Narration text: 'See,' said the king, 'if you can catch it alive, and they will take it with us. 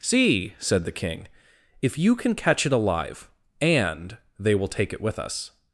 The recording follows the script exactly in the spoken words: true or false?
true